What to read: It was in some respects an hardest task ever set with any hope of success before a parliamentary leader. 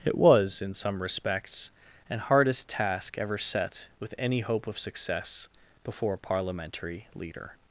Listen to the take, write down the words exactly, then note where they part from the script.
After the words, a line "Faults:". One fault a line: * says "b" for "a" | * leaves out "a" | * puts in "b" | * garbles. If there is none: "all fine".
It was in some respects an hardest task ever set with any hope of success before a parliamentary leader.
Faults:
all fine